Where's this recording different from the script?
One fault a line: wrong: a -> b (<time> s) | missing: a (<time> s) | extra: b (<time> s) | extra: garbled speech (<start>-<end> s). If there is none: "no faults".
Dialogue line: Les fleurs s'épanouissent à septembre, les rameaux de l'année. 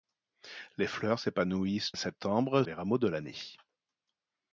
no faults